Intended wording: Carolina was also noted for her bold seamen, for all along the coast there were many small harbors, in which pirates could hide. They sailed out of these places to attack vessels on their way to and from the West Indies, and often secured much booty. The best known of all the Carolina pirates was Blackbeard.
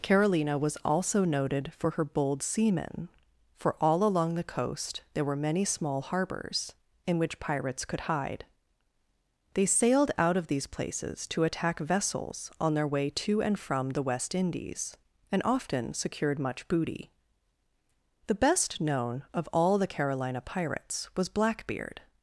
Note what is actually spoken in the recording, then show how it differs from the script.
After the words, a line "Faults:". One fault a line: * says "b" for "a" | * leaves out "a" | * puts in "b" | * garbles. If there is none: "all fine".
Carolina was also noted for her bold seamen, for all along the coast there were many small harbors, in which pirates could hide. They sailed out of these places to attack vessels on their way to and from the West Indies, and often secured much booty. The best known of all the Carolina pirates was Blackbeard.
Faults:
all fine